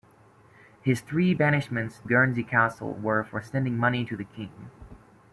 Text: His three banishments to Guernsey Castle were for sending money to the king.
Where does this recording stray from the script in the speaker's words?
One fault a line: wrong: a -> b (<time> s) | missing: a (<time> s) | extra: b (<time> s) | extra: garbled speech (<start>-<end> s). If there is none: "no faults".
missing: to (2.0 s)